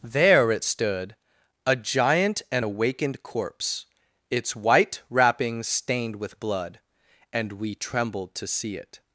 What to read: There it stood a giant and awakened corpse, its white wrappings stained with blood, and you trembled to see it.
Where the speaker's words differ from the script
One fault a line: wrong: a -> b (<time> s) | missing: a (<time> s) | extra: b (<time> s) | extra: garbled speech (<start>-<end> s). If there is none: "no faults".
wrong: you -> we (7.5 s)